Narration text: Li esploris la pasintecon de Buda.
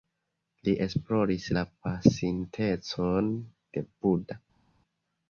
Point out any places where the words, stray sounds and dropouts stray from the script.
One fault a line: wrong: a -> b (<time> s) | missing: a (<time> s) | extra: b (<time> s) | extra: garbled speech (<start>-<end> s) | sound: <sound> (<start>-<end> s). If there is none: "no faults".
no faults